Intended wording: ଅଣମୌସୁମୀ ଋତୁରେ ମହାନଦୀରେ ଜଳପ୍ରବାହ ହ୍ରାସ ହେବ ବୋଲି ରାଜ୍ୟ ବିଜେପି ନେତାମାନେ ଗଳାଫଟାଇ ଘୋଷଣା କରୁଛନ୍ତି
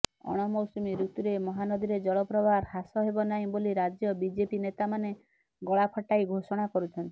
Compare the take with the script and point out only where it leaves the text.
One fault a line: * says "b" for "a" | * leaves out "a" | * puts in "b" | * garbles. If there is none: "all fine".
* puts in "ନାହିଁ"